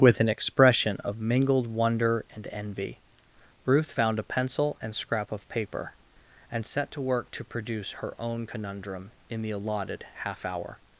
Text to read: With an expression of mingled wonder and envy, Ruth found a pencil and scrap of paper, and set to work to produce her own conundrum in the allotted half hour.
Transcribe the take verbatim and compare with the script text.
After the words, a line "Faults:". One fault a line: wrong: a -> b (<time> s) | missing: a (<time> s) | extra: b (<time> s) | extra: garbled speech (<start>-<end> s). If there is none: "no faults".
With an expression of mingled wonder and envy, Ruth found a pencil and scrap of paper, and set to work to produce her own conundrum in the allotted half hour.
Faults:
no faults